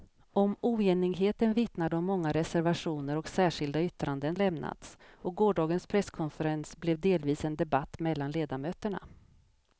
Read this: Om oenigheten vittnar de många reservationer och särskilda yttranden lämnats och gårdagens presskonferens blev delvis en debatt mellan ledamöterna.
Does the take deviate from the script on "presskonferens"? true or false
false